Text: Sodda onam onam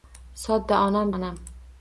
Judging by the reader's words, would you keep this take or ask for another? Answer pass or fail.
pass